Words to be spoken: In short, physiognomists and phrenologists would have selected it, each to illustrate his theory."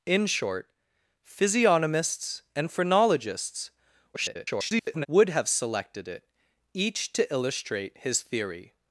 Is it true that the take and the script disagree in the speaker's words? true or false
true